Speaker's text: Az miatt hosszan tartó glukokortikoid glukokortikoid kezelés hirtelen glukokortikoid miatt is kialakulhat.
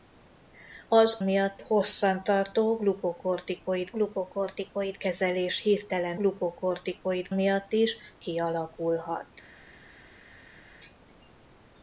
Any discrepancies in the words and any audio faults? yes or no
no